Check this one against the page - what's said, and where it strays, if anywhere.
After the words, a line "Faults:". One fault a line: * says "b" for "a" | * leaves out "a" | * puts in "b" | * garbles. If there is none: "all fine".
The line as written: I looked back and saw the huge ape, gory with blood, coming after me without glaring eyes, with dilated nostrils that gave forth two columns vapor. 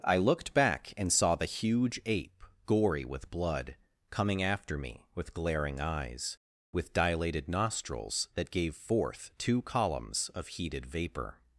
I looked back and saw the huge ape, gory with blood, coming after me with glaring eyes, with dilated nostrils that gave forth two columns of heated vapor.
Faults:
* says "with" for "without"
* puts in "of heated"